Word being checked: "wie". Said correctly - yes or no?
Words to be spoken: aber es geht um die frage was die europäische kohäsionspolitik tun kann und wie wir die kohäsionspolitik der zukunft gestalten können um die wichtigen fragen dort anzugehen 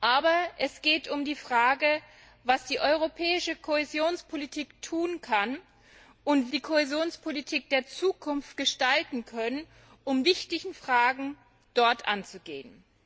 no